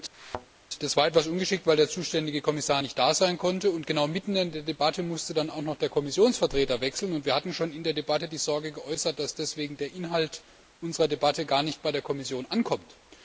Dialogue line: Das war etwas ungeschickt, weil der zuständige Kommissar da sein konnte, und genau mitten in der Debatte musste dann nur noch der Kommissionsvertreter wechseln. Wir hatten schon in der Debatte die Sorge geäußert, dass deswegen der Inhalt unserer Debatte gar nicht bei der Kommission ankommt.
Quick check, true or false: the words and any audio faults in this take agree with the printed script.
false